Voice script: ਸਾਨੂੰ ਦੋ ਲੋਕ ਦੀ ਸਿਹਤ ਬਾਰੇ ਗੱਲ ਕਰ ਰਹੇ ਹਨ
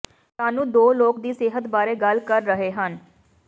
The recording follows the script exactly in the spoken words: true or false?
true